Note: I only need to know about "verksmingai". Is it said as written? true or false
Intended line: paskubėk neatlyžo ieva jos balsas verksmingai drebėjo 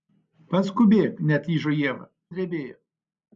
false